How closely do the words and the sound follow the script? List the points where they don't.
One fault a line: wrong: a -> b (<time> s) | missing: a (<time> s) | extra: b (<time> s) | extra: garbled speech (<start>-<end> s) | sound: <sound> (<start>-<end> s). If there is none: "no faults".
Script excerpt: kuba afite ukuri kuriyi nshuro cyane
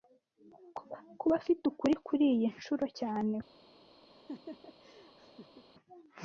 sound: laugh (4.1-5.7 s)